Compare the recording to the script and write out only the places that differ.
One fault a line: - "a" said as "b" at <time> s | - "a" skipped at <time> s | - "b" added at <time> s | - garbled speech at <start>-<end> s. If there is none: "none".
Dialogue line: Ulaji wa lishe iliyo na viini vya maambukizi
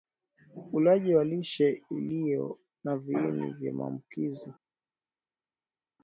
none